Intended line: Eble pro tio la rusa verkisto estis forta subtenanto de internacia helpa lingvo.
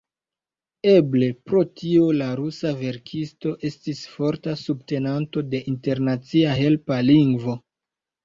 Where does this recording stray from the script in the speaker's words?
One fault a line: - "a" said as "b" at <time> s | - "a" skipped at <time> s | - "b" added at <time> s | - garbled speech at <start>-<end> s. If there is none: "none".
none